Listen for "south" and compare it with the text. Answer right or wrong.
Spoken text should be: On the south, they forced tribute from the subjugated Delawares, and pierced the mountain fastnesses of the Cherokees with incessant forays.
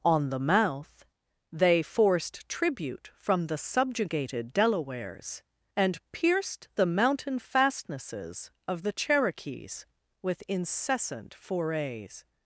wrong